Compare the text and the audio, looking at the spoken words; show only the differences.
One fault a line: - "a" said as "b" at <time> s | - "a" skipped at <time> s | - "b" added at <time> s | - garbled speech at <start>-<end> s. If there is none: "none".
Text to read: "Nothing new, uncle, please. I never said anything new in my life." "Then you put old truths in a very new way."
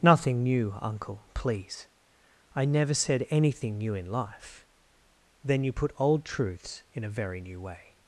- "my" skipped at 4.0 s